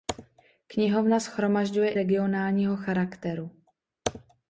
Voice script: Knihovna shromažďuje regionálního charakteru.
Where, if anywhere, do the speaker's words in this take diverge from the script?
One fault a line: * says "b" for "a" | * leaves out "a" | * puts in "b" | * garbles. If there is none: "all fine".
all fine